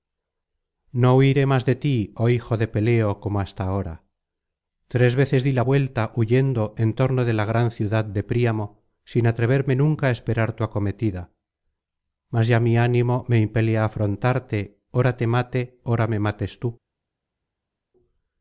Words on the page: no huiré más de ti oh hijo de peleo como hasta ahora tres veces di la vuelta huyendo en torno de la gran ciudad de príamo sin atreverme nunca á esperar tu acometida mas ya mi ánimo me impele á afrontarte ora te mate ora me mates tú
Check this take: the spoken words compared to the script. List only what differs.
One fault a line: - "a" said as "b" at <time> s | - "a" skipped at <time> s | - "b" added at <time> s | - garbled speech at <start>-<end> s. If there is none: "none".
none